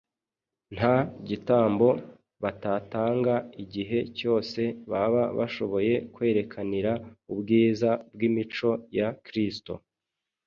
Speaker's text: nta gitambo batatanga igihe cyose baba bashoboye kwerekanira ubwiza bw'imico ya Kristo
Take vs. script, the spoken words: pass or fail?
pass